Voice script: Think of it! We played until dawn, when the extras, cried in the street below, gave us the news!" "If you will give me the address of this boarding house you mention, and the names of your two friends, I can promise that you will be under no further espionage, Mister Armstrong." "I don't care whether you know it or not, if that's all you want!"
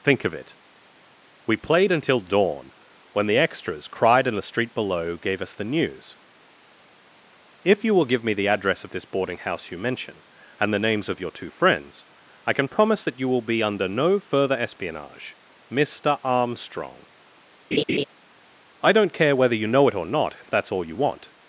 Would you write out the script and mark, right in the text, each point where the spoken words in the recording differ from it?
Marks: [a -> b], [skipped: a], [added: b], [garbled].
Think of it! We played until dawn, when the extras, cried in the street below, gave us the news!" "If you will give me the address of this boarding house you mention, and the names of your two friends, I can promise that you will be under no further espionage, Mister Armstrong." "I don't care whether you know it or not, if that's all you want!"